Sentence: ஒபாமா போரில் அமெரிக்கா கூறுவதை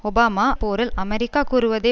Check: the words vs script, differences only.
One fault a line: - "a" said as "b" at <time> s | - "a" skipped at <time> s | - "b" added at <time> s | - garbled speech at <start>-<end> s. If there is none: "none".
none